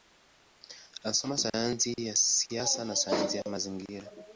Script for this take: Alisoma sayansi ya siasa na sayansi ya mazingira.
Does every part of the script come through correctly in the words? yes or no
yes